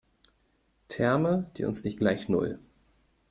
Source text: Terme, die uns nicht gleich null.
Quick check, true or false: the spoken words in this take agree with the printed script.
true